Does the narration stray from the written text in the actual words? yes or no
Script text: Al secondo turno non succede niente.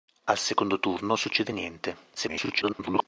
yes